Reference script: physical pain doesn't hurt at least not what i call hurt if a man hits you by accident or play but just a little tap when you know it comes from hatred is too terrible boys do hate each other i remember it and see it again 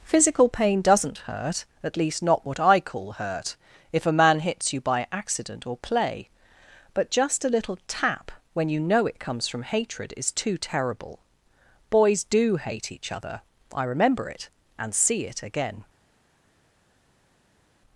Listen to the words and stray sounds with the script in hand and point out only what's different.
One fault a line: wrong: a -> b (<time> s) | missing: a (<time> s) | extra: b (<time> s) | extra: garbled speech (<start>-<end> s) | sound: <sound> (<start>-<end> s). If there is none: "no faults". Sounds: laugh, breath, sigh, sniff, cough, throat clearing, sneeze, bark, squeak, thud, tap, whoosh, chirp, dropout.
no faults